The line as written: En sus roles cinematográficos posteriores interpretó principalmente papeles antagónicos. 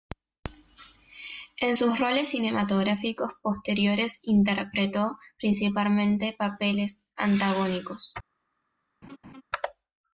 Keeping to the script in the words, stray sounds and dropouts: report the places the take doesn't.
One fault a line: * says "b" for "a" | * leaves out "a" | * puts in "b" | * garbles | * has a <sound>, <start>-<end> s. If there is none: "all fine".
* has a laugh, 9.0-9.4 s